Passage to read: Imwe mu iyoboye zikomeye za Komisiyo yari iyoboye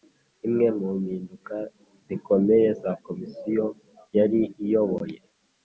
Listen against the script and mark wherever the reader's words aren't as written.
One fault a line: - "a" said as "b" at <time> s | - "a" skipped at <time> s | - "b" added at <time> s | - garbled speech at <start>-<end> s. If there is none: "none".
- "iyoboye" said as "mpinduka" at 1.0 s